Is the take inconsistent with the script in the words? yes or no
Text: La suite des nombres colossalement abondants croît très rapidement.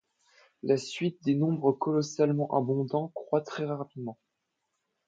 no